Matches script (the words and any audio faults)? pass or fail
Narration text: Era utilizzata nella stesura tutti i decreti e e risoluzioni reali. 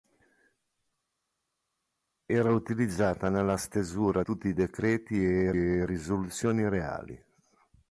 pass